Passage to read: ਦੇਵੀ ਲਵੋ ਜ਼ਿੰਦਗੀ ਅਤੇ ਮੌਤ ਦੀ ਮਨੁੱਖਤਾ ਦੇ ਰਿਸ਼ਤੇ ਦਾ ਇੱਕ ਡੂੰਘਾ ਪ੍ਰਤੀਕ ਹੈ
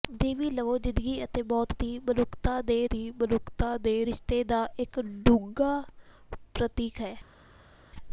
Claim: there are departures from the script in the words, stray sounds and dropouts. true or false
true